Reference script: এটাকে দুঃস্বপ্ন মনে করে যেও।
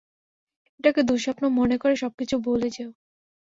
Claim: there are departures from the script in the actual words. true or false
true